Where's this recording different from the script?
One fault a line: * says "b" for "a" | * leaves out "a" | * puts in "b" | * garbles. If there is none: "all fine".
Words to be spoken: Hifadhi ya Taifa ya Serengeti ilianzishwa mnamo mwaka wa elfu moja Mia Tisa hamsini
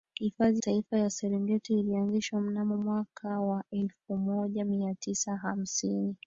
* leaves out "ya"